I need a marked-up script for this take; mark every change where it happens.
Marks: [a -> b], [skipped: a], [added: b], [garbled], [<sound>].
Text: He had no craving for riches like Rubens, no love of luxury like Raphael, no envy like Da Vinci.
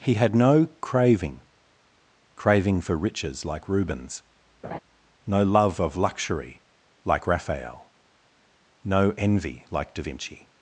He had no craving [added: craving] for riches like Rubens, [laugh] no love of luxury like Raphael, no envy like Da Vinci.